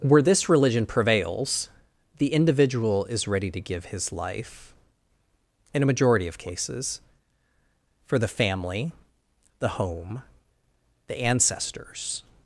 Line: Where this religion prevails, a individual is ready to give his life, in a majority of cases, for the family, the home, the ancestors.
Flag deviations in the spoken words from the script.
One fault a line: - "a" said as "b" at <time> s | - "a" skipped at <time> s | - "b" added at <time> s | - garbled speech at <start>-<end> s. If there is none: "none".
- "a" said as "the" at 2.2 s